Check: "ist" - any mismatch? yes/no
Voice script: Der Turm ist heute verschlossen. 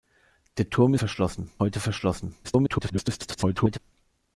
yes